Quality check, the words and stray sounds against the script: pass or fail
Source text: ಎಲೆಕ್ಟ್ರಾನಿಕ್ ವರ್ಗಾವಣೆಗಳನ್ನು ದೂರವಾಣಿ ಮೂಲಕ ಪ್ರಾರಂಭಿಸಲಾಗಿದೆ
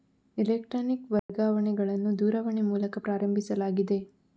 fail